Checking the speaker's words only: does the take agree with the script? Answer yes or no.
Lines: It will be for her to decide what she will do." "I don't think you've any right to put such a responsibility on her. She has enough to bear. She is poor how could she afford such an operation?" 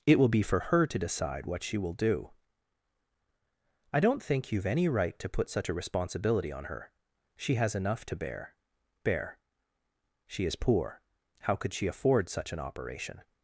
no